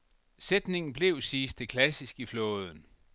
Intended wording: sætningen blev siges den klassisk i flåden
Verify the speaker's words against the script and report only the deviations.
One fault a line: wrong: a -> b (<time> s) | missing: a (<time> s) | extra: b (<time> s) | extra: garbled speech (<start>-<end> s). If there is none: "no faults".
wrong: den -> det (1.5 s)